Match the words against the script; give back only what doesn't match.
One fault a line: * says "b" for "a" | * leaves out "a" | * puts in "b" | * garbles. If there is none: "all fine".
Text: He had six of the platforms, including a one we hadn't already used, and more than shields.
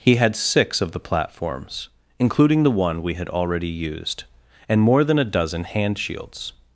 * says "the" for "a"
* says "had" for "hadn't"
* puts in "a dozen hand"